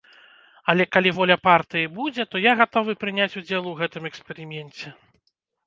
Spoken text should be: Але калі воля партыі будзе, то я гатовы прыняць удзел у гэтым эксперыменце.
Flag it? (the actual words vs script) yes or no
no